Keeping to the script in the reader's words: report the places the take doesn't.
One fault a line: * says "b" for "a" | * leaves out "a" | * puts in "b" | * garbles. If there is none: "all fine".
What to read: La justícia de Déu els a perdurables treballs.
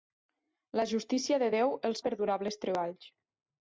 all fine